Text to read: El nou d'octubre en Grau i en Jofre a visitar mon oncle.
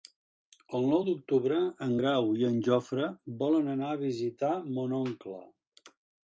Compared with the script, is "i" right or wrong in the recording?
right